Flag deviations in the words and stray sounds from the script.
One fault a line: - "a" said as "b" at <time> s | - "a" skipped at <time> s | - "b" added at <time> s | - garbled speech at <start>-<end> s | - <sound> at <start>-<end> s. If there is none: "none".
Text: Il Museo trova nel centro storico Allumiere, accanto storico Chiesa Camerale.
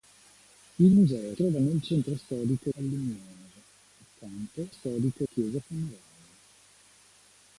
none